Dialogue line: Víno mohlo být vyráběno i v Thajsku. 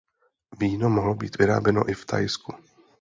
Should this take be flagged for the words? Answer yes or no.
no